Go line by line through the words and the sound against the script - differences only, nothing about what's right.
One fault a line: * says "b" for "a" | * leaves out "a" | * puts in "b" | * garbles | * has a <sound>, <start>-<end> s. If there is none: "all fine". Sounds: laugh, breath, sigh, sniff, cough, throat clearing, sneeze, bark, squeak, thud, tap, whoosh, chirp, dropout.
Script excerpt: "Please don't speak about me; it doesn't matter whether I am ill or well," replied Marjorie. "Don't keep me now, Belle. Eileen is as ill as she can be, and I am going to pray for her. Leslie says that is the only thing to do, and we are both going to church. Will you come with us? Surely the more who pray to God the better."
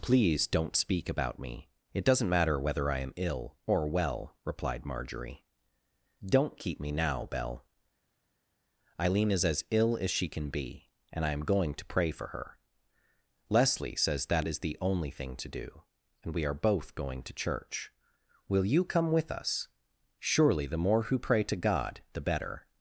all fine